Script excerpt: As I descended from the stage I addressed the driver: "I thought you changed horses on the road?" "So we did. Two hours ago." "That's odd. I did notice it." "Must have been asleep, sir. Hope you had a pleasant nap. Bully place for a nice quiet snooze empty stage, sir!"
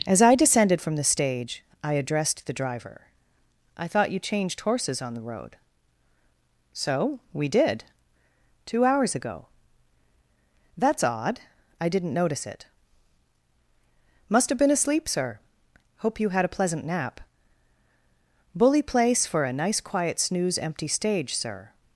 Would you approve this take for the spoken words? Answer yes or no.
no